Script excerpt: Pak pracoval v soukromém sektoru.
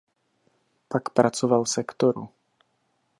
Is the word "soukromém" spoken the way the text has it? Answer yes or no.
no